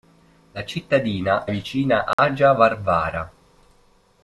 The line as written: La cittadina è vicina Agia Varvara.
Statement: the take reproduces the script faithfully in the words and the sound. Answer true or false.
false